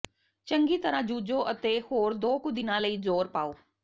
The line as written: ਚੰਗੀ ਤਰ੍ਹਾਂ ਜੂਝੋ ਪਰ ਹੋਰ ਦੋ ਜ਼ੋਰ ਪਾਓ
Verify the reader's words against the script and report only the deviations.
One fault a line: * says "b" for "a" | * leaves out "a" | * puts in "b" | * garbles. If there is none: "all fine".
* says "ਅਤੇ" for "ਪਰ"
* puts in "ਕੁ ਦਿਨਾਂ ਲਈ"